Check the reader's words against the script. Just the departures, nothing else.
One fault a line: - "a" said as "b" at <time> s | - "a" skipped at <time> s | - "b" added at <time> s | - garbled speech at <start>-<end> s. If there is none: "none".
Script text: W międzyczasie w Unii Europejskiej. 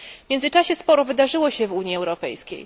- "sporo wydarzyło się" added at 0.8 s